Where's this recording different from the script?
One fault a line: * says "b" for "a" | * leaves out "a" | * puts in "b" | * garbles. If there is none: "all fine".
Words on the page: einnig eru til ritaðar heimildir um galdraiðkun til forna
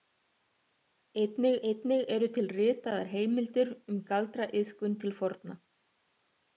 * puts in "einnig"